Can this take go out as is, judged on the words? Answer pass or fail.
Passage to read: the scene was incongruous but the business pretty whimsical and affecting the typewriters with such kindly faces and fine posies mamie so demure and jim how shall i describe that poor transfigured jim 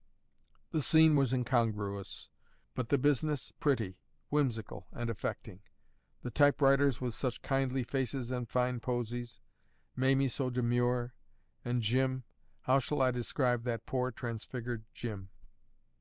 pass